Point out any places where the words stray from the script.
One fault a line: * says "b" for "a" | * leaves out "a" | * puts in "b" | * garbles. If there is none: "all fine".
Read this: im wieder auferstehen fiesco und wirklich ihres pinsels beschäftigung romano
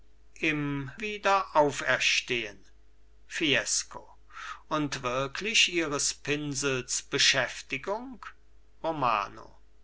all fine